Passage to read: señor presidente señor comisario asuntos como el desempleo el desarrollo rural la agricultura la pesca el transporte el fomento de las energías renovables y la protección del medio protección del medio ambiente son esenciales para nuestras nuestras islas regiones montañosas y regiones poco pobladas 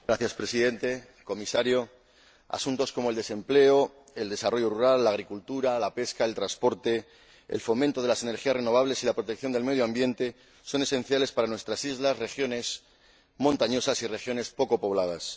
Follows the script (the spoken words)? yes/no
no